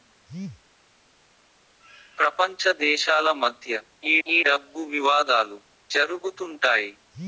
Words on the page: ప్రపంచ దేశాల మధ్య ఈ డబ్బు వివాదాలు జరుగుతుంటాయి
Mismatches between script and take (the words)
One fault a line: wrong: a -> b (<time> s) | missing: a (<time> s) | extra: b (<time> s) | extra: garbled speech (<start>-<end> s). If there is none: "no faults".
extra: ఈ (4.3 s)